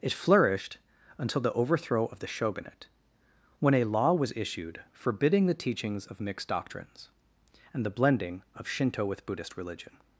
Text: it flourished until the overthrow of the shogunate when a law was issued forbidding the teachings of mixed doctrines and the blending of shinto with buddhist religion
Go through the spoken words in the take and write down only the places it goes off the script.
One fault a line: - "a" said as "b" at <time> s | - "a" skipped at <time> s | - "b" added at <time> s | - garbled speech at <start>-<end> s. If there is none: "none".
none